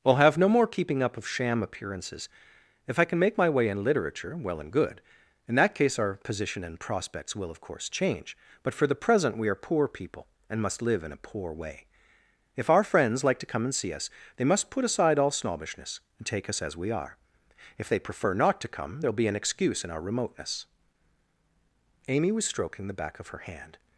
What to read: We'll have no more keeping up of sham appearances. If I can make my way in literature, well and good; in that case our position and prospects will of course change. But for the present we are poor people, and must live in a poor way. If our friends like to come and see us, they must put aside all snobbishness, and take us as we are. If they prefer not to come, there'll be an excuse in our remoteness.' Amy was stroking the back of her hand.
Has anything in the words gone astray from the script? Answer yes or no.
no